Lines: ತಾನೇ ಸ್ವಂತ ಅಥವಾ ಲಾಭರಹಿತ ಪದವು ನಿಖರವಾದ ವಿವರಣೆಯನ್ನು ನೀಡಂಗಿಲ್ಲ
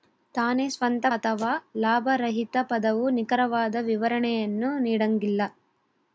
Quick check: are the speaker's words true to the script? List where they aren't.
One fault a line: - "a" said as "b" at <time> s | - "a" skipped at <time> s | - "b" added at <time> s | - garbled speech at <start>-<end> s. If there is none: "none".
none